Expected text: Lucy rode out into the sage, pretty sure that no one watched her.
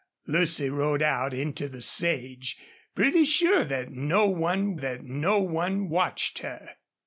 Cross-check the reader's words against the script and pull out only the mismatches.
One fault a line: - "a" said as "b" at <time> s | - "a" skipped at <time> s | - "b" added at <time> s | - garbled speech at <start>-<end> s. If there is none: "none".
- "that no one" added at 4.8 s